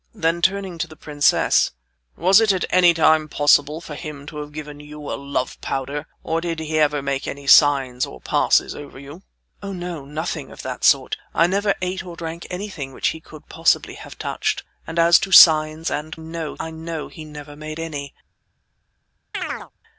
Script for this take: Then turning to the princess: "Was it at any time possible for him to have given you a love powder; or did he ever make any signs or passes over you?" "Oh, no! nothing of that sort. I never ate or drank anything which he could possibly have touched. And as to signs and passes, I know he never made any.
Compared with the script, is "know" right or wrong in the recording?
right